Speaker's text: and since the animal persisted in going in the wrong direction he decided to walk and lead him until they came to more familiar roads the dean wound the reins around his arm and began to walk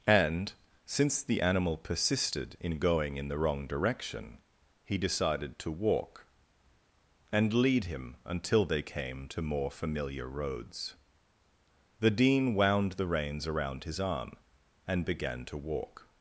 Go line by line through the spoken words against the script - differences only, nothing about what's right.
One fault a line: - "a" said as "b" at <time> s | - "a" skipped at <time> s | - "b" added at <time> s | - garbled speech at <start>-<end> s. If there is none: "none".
none